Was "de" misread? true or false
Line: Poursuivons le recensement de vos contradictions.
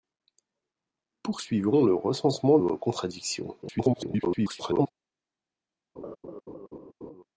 true